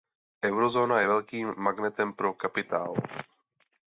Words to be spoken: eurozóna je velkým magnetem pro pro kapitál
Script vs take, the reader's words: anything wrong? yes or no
yes